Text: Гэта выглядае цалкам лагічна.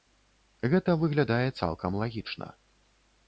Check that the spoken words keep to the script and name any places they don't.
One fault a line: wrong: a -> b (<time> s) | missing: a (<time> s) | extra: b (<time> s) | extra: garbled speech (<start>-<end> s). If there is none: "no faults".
no faults